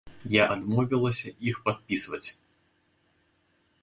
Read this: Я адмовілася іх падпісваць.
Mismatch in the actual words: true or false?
false